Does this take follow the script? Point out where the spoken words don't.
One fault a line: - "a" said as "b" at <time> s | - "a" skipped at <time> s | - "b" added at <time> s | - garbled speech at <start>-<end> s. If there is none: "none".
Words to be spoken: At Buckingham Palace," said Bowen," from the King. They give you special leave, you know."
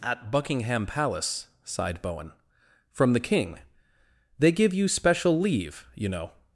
- "said" said as "sighed" at 1.6 s